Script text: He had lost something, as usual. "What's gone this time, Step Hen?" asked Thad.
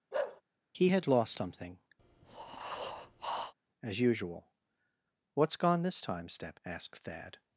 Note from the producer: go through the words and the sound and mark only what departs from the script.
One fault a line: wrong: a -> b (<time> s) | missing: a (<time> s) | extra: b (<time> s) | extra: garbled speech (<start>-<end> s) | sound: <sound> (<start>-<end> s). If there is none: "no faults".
sound: bark (0.1-0.4 s)
sound: breath (2.0-3.5 s)
missing: Hen (6.6 s)